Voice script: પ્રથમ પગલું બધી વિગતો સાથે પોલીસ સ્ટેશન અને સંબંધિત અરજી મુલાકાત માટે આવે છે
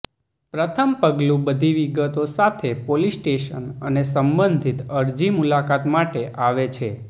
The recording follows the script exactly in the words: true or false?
true